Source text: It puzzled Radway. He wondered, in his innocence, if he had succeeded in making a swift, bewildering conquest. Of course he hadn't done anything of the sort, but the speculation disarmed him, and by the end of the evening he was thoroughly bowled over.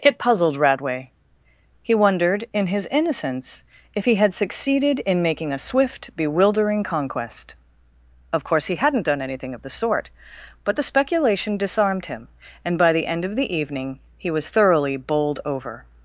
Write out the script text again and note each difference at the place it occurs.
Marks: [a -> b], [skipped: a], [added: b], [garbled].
It puzzled Radway. He wondered, in his innocence, if he had succeeded in making a swift, bewildering conquest. Of course he hadn't done anything of the sort, but the speculation disarmed him, and by the end of the evening he was thoroughly bowled over.